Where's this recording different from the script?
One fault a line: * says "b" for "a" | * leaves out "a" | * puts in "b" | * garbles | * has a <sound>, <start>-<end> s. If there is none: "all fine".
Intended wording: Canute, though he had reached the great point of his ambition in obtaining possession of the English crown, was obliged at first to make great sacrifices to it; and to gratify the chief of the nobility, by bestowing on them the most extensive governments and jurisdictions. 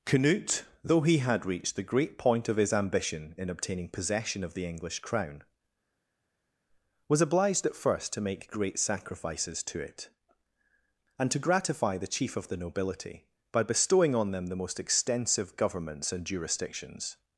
all fine